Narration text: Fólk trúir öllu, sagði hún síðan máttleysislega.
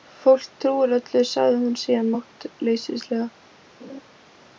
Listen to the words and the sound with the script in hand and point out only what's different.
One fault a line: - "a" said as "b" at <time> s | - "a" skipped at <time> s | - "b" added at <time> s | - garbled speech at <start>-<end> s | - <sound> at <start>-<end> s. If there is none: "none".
- laugh at 3.8-4.0 s